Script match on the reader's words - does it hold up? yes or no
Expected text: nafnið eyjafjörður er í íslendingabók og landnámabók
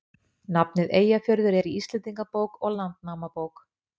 yes